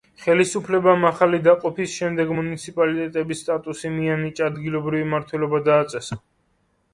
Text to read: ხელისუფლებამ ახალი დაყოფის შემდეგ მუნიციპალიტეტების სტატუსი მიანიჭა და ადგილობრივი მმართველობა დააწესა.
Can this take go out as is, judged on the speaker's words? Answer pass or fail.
fail